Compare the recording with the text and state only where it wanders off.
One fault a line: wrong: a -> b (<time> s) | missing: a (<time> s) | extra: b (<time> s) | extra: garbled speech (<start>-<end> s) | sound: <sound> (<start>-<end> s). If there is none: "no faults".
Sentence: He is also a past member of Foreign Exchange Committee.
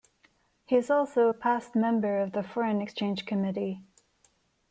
extra: the (2.3 s)